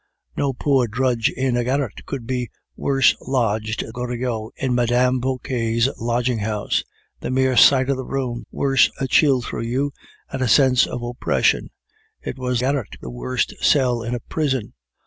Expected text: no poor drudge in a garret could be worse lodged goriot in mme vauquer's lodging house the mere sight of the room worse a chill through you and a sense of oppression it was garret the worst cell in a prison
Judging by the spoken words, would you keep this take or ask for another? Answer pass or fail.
pass